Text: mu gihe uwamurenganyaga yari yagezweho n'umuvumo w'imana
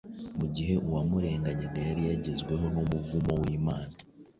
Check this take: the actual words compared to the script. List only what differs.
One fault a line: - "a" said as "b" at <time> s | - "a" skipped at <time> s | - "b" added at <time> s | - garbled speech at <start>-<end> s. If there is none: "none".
none